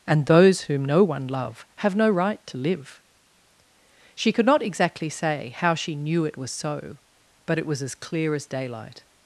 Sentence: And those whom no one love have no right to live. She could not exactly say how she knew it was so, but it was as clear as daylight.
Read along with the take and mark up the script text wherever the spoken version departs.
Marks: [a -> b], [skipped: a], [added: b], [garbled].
And those whom no one love have no right to live. She could not exactly say how she knew it was so, but it was as clear as daylight.